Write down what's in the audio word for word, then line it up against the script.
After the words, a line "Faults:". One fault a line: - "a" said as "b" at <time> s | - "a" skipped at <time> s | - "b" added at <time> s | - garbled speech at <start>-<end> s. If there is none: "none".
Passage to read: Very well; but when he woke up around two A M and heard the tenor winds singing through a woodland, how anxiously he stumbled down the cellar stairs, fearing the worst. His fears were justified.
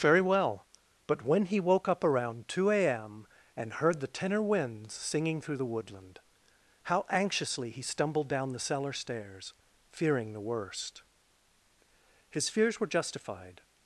Very well; but when he woke up around two A M and heard the tenor winds singing through the woodland, how anxiously he stumbled down the cellar stairs, fearing the worst. His fears were justified.
Faults:
- "a" said as "the" at 5.6 s